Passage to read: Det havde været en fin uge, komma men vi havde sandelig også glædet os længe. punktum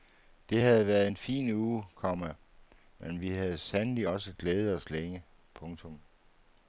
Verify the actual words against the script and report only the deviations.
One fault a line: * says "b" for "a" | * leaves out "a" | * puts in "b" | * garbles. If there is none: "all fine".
all fine